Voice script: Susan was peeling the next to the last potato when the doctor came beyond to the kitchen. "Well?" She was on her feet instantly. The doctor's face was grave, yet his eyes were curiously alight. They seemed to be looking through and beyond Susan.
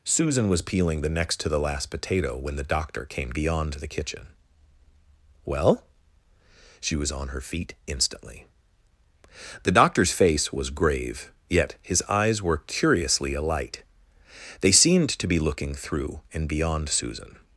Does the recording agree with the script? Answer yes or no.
yes